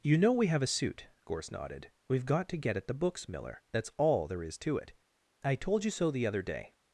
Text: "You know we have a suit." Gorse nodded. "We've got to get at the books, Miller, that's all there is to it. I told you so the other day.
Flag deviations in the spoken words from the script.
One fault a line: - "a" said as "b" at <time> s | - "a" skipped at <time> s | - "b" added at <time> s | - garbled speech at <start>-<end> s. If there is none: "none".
none